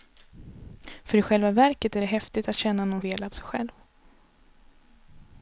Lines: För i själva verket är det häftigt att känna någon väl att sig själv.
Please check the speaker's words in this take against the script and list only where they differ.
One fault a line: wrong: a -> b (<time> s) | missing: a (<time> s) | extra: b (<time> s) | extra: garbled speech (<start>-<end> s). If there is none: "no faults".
no faults